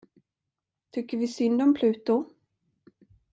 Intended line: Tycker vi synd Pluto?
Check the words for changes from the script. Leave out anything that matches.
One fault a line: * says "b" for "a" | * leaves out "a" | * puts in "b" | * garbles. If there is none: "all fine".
* puts in "om"